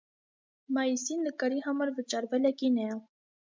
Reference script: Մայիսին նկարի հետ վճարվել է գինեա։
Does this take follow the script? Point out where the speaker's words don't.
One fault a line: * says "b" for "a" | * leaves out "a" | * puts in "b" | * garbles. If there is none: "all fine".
* says "համար" for "հետ"